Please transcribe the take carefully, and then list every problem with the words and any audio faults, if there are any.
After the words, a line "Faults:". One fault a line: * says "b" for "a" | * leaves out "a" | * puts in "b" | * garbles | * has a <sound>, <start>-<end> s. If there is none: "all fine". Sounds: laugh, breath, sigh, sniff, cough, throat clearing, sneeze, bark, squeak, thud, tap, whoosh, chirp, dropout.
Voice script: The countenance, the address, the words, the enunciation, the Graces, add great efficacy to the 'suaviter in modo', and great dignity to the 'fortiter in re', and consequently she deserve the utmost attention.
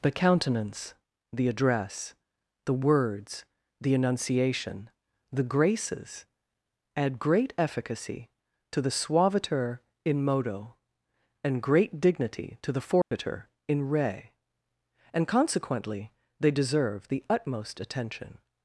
The countenance, the address, the words, the enunciation, the Graces, add great efficacy to the 'suaviter in modo', and great dignity to the 'fortiter in re', and consequently they deserve the utmost attention.
Faults:
* has a dropout, 13.0-13.1 s
* says "they" for "she"